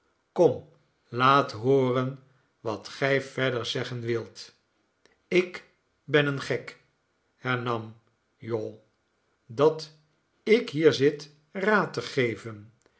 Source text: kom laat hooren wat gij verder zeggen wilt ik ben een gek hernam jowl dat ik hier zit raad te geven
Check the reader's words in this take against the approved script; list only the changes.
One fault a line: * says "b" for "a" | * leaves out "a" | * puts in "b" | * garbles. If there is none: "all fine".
all fine